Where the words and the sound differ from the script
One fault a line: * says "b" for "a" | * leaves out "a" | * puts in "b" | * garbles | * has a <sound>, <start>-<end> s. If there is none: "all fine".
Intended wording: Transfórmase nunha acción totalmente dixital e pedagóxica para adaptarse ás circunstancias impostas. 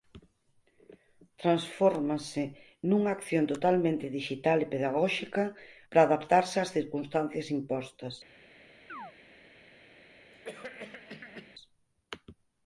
* has a chirp, 8.9-9.1 s
* has a cough, 10.3-11.5 s